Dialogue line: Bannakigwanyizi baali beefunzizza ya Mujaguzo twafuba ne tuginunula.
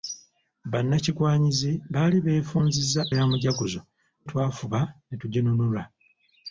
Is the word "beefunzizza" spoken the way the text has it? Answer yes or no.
yes